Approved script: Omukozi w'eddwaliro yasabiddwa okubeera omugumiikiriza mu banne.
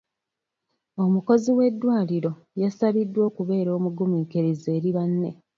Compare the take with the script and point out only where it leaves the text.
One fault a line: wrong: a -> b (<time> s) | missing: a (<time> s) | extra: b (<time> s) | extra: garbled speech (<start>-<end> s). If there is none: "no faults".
wrong: mu -> eri (4.8 s)